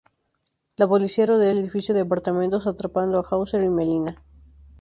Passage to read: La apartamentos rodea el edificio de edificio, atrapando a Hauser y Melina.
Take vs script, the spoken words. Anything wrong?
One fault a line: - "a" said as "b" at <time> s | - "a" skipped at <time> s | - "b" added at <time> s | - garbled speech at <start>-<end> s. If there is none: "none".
- "apartamentos" said as "policía" at 0.9 s
- "edificio" said as "apartamentos" at 2.0 s